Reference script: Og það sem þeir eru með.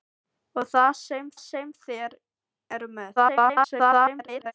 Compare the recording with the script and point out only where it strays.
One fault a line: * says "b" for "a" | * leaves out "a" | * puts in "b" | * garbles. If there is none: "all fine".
* puts in "sem"
* garbles